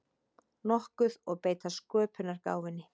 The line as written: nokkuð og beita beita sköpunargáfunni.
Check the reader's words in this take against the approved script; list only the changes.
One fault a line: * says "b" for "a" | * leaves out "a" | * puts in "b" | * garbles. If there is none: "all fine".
* leaves out "beita"